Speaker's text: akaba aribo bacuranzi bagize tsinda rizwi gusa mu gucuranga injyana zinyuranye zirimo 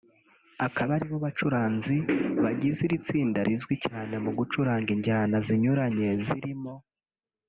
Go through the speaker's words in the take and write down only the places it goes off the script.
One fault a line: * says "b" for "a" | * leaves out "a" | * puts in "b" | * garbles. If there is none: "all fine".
* puts in "iri"
* says "cyane" for "gusa"